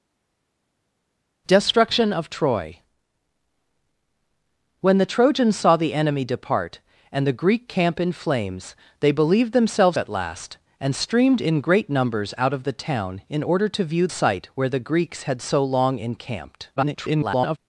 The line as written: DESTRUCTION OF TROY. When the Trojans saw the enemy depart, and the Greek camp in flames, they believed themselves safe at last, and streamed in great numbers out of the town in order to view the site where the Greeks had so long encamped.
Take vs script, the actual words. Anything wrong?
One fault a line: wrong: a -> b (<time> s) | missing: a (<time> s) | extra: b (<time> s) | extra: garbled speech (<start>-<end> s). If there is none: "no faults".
missing: safe (10.0 s)
missing: the (14.1 s)
extra: garbled speech (16.8-17.6 s)